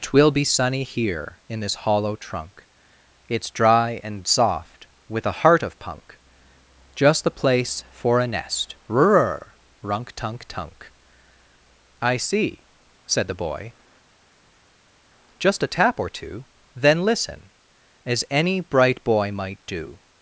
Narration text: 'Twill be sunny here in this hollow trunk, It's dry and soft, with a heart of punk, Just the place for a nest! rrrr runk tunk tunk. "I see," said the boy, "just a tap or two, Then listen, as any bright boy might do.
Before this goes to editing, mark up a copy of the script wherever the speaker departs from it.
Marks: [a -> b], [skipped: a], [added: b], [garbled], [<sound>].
'Twill be sunny here in this hollow trunk, It's dry and soft, with a heart of punk, Just the place for a nest! rrrr runk tunk tunk. "I see," said the boy, "just a tap or two, Then listen, as any bright boy might do.